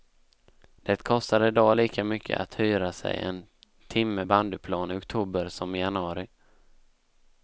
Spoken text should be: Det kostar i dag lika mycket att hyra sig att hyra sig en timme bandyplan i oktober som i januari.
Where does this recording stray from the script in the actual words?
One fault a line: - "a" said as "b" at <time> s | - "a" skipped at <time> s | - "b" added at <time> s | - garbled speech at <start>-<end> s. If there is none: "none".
- "att hyra sig" skipped at 3.2 s